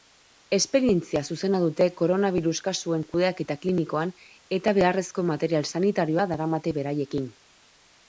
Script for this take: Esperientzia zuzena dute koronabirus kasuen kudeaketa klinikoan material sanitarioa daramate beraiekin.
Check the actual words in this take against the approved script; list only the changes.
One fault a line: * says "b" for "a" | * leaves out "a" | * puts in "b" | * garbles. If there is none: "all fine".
* puts in "eta beharrezko"